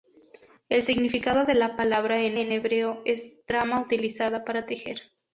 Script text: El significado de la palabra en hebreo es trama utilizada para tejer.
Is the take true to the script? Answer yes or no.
no